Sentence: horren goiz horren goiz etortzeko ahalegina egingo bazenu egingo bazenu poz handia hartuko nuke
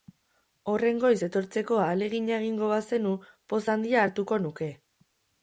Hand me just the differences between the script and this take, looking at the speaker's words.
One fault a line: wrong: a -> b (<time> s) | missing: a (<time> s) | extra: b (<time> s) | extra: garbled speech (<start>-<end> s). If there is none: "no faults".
missing: horren goiz (1.2 s)
missing: egingo bazenu (3.1 s)